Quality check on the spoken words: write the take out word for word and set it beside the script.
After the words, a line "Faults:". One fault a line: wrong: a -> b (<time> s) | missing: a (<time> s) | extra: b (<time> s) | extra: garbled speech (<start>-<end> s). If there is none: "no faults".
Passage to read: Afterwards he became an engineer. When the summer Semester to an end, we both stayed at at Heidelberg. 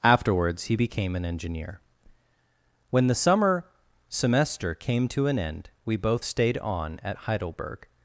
Afterwards he became an engineer. When the summer Semester came to an end, we both stayed on at Heidelberg.
Faults:
extra: came (4.7 s)
wrong: at -> on (6.6 s)